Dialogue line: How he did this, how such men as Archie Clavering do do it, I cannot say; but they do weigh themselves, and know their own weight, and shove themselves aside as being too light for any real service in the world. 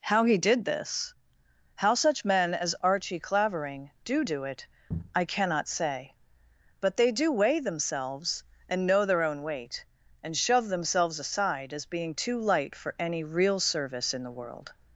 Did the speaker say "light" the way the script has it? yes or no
yes